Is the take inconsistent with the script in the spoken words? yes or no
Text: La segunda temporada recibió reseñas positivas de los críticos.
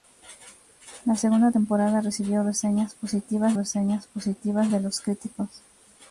yes